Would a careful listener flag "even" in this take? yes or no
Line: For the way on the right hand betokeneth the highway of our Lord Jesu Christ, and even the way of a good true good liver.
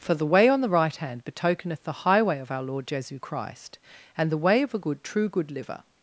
yes